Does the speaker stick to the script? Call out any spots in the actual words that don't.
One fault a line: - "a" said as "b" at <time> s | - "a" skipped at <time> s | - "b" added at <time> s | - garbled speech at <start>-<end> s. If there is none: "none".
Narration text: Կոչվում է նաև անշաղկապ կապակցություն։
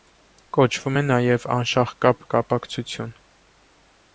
none